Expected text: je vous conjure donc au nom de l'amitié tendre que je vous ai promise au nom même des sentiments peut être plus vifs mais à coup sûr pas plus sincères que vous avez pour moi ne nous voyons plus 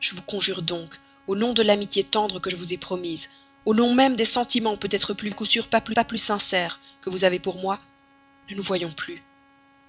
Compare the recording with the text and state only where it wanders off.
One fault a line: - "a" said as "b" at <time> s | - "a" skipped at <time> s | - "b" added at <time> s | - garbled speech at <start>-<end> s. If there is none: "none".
- "vifs mais" skipped at 5.3 s
- "pas plus" added at 5.9 s